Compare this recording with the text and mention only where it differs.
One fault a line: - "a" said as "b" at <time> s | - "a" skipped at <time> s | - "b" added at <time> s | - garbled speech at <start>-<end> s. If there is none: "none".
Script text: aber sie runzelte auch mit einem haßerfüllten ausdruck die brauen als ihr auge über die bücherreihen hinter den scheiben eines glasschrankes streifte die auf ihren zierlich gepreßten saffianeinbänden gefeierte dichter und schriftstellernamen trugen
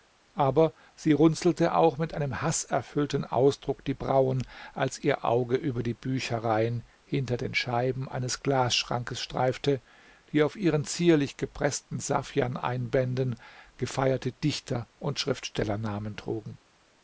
none